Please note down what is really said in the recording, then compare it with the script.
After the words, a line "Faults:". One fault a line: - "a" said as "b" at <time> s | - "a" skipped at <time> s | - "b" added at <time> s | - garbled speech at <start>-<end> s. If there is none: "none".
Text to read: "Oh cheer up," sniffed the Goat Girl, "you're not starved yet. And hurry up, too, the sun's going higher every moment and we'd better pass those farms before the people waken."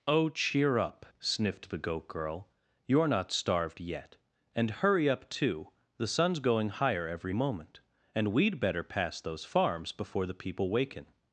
"Oh cheer up," sniffed the Goat Girl, "you're not starved yet. And hurry up, too, the sun's going higher every moment and we'd better pass those farms before the people waken."
Faults:
none